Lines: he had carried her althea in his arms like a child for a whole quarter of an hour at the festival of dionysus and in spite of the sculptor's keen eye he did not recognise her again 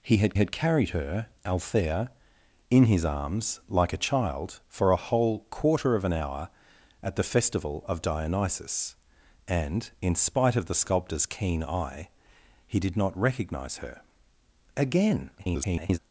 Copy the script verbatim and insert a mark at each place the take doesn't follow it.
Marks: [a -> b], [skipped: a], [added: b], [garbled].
he had [added: had] carried her althea in his arms like a child for a whole quarter of an hour at the festival of dionysus and in spite of the sculptor's keen eye he did not recognise her again [garbled]